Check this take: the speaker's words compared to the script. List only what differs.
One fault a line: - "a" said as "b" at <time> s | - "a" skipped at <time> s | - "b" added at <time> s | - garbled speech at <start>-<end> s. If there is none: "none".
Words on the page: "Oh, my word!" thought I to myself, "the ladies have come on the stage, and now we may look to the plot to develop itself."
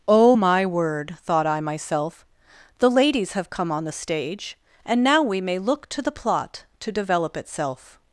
- "to" skipped at 1.6 s